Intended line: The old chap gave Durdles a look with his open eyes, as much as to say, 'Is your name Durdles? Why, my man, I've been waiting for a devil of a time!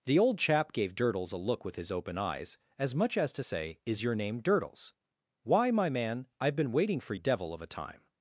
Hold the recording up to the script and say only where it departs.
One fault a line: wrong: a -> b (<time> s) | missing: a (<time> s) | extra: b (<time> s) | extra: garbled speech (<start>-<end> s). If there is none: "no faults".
no faults